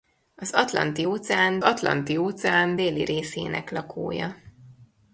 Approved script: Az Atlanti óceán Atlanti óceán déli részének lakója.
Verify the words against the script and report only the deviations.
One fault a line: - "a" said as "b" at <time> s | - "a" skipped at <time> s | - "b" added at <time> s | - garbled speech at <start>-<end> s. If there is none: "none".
none